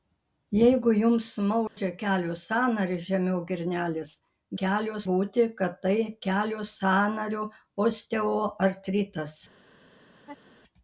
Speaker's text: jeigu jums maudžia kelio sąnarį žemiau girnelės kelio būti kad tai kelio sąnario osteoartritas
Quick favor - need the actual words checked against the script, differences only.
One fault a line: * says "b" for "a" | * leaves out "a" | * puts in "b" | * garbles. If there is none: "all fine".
all fine